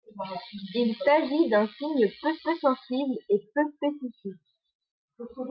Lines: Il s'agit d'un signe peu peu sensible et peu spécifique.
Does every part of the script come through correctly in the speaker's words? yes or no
yes